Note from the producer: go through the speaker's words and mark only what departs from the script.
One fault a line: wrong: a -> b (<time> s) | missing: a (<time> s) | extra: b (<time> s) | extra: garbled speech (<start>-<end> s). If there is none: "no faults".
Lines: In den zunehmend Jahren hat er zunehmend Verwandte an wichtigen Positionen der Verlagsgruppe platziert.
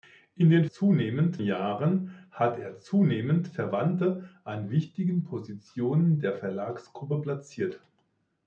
no faults